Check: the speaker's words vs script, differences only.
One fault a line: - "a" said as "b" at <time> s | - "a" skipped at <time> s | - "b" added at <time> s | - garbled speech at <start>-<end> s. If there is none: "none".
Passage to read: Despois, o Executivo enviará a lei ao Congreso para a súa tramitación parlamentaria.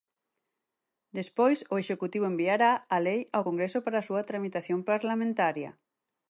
none